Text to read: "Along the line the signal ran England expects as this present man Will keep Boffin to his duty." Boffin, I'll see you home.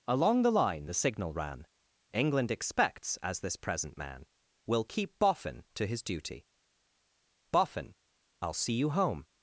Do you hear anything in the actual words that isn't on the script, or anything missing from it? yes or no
no